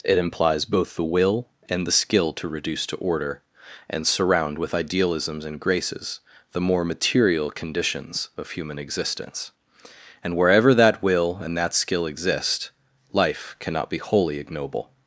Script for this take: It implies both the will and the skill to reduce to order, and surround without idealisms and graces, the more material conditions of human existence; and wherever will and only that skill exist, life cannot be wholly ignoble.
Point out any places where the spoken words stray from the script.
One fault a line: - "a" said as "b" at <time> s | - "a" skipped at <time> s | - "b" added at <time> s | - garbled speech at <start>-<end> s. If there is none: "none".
- "without" said as "with" at 4.6 s
- "that" added at 10.7 s
- "only" skipped at 11.6 s